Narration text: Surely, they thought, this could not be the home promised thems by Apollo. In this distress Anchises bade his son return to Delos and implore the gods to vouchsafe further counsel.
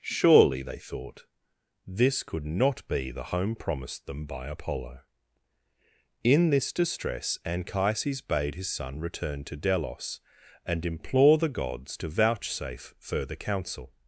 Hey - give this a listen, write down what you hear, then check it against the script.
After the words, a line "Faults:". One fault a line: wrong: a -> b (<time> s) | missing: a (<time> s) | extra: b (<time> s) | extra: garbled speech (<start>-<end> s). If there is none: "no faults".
Surely, they thought, this could not be the home promised them by Apollo. In this distress Anchises bade his son return to Delos and implore the gods to vouchsafe further counsel.
Faults:
wrong: thems -> them (4.1 s)